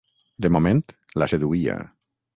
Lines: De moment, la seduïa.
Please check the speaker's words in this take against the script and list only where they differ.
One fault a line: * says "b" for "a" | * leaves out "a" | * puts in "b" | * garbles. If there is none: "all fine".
all fine